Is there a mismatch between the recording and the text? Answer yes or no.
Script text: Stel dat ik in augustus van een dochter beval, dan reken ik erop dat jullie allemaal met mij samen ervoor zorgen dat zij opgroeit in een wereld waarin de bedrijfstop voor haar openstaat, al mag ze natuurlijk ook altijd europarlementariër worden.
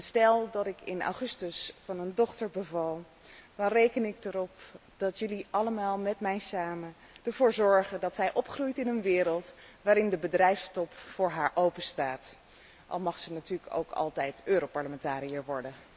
no